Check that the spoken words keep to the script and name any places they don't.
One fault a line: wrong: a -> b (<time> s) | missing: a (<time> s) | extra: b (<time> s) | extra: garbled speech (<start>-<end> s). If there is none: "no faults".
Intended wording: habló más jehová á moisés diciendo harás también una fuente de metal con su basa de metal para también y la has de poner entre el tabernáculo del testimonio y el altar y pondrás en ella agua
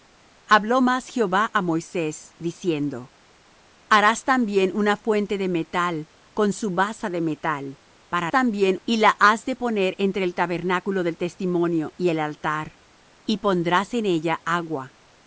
no faults